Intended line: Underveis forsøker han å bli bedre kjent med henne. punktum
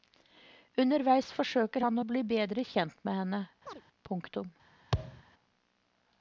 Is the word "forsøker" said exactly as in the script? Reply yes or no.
yes